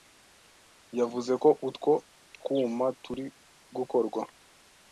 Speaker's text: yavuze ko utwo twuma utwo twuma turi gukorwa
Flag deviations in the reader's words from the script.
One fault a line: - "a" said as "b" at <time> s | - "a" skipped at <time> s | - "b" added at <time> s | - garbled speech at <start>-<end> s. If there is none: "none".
- "utwo twuma" skipped at 2.9 s